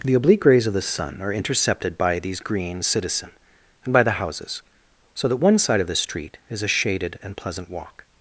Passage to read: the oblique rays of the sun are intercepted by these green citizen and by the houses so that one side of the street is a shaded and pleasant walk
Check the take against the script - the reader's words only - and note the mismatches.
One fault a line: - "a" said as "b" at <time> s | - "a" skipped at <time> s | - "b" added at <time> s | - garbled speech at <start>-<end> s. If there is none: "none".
none